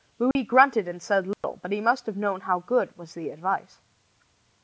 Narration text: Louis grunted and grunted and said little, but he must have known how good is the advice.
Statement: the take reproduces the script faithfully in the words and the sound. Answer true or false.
false